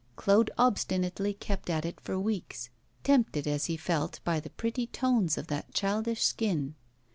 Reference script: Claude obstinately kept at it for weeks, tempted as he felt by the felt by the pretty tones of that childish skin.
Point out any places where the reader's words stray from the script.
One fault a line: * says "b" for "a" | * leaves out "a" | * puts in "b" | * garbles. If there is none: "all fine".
* leaves out "felt by the"